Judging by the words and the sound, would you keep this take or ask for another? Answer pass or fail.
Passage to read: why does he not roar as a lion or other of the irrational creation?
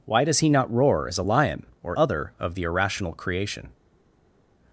pass